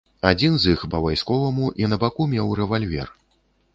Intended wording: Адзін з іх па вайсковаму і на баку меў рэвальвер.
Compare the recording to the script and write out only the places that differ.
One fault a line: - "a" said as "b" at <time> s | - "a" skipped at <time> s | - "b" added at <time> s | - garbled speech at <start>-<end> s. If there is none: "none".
none